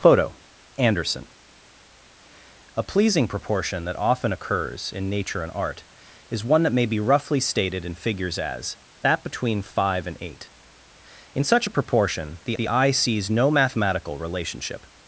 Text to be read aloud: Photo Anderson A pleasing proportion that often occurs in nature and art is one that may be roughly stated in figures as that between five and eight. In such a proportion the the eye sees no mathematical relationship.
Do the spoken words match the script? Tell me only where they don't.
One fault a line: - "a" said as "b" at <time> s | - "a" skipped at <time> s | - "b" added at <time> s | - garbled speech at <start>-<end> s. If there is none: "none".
none